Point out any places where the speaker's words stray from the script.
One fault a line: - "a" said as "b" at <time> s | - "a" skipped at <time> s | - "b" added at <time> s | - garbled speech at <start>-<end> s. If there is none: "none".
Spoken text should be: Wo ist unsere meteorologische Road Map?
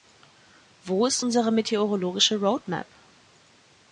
none